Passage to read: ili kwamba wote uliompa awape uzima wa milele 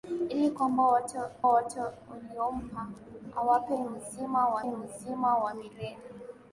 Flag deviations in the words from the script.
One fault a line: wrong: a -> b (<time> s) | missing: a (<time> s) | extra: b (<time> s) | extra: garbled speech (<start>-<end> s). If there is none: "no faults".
extra: wote (1.4 s)
extra: uzima wa (4.6 s)